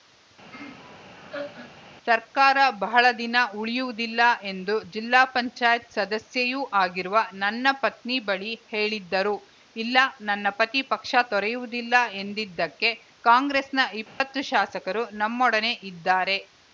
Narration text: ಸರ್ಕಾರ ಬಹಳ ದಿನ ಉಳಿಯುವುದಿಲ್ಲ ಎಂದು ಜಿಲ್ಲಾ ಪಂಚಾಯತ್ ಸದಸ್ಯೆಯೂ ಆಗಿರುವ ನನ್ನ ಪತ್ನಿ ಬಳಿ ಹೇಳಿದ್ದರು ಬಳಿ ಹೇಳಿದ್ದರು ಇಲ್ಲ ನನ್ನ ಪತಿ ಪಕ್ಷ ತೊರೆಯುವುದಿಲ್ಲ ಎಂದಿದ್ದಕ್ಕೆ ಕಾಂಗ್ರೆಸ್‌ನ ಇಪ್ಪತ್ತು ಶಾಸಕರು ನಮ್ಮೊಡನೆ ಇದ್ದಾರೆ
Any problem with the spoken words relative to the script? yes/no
yes